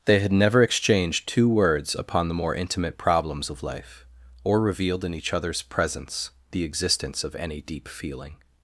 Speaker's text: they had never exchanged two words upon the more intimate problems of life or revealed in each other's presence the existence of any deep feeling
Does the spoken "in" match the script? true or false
true